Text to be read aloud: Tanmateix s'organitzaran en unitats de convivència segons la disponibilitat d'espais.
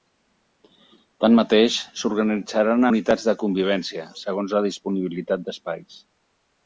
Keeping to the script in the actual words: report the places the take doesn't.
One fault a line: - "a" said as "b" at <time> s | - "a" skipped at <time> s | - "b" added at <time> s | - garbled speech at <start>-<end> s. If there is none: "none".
- "en" skipped at 2.9 s